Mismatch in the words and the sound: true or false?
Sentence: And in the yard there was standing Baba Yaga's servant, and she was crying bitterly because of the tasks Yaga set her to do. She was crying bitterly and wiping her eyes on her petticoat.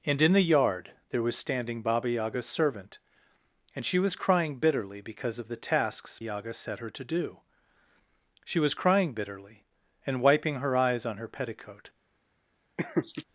true